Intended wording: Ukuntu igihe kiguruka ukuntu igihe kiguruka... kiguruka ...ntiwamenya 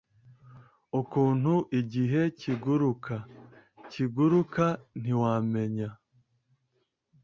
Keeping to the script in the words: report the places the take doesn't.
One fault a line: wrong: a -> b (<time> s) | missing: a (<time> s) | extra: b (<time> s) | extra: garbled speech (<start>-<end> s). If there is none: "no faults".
missing: ukuntu igihe kiguruka (3.1 s)